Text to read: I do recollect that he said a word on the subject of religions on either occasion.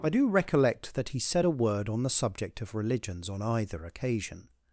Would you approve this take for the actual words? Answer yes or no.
yes